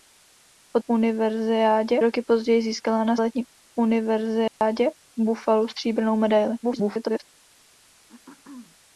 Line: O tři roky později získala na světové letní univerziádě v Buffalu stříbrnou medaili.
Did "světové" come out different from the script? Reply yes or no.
yes